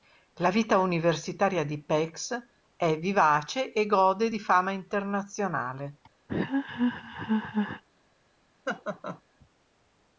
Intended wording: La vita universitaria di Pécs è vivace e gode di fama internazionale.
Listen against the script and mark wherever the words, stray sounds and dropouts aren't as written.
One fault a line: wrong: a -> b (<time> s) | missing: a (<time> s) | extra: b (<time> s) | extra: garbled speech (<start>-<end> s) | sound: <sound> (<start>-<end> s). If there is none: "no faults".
sound: laugh (6.3-7.8 s)
sound: laugh (8.6-9.2 s)